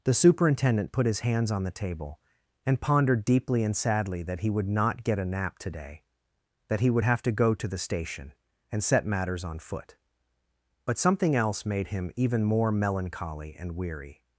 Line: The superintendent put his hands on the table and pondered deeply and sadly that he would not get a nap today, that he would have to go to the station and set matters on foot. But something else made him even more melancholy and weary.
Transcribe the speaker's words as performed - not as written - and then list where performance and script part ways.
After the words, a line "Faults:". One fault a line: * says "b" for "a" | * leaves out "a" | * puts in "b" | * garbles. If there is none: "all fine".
The superintendent put his hands on the table and pondered deeply and sadly that he would not get a nap today, that he would have to go to the station and set matters on foot. But something else made him even more melancholy and weary.
Faults:
all fine